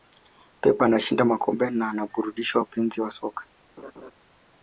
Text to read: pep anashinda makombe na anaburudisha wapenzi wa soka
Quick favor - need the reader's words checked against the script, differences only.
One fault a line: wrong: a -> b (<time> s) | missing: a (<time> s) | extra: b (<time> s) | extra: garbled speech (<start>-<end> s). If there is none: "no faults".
no faults